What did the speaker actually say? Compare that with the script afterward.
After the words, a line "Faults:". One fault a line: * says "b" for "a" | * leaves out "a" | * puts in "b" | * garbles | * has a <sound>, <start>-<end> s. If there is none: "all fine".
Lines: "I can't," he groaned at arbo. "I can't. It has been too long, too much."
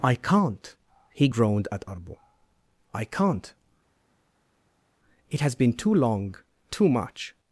"I can't," he groaned at arbo. "I can't. It has been too long, too much."
Faults:
all fine